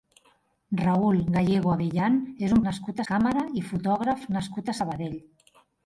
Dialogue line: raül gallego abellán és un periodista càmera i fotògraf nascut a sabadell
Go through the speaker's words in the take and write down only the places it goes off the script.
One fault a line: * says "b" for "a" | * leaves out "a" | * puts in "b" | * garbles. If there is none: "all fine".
* says "nascut" for "periodista"